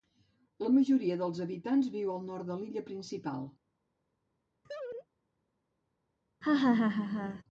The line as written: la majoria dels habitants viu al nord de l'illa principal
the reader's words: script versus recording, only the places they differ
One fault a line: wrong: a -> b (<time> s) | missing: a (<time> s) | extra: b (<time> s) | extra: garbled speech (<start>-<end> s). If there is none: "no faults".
no faults